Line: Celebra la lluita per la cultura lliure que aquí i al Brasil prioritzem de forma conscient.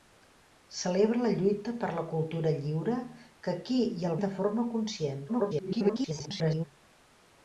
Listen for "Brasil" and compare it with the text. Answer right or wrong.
wrong